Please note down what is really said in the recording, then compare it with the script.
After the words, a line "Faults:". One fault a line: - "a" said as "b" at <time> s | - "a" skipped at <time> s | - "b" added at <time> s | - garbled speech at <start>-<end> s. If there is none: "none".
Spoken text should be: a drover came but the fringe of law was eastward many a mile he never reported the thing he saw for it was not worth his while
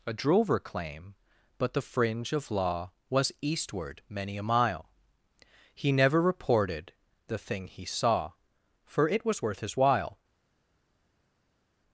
a drover claim but the fringe of law was eastward many a mile he never reported the thing he saw for it was worth his while
Faults:
- "came" said as "claim" at 0.6 s
- "not" skipped at 9.4 s